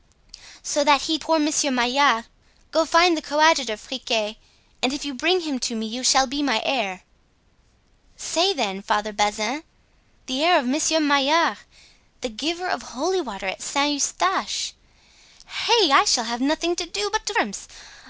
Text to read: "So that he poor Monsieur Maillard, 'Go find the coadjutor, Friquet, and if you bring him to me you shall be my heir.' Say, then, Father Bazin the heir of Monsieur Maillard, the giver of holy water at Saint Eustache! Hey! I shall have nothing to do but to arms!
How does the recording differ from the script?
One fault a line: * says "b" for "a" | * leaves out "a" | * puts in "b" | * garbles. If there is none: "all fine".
all fine